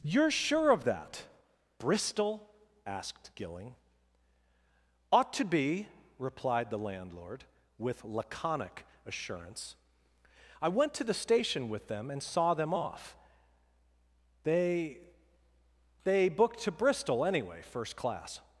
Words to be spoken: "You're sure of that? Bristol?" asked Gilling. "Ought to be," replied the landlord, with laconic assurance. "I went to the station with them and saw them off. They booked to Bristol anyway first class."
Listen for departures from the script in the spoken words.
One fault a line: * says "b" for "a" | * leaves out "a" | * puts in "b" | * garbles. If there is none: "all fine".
* puts in "They"